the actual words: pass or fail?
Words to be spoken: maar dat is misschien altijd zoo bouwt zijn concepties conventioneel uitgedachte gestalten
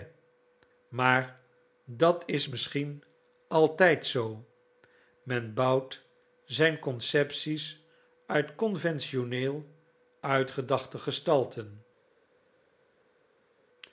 fail